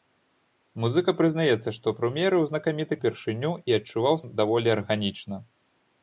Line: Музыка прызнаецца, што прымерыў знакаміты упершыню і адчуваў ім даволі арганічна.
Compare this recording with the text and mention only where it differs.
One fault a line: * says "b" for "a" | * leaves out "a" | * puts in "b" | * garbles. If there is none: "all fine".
all fine